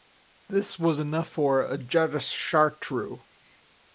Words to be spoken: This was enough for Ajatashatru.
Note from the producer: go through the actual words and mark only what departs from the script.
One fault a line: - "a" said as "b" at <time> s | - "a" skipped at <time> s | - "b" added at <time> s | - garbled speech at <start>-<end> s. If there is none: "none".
none